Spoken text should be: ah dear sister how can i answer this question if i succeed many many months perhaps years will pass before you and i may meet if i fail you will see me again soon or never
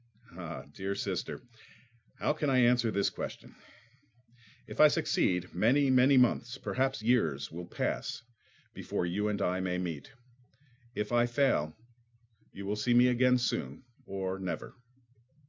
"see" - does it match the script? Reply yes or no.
yes